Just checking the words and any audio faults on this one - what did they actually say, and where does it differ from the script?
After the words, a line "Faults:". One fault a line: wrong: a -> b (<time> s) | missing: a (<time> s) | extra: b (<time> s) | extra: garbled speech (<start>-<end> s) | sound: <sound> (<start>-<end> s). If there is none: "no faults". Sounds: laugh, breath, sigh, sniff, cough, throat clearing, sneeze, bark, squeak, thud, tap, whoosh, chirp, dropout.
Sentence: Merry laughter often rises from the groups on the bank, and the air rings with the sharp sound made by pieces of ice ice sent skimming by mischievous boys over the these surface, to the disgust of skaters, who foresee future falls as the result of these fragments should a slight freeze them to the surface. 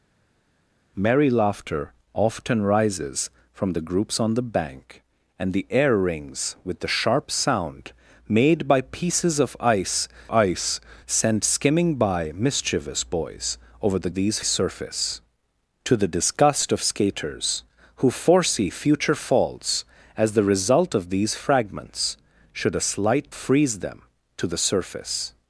Merry laughter often rises from the groups on the bank, and the air rings with the sharp sound made by pieces of ice ice sent skimming by mischievous boys over the these surface, to the disgust of skaters, who foresee future falls as the result of these fragments should a slight freeze them to the surface.
Faults:
no faults